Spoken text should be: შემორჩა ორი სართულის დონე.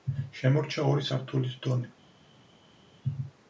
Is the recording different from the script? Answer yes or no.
no